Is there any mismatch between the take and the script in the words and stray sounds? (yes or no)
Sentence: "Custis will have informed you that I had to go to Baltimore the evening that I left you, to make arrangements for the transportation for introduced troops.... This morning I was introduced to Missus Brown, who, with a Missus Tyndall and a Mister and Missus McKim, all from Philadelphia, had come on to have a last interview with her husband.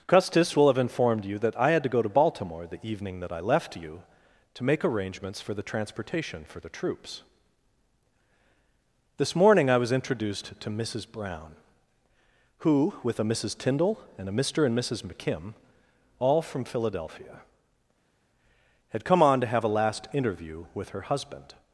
yes